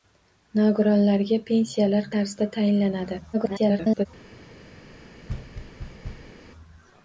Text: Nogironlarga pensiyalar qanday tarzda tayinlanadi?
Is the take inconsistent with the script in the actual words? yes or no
yes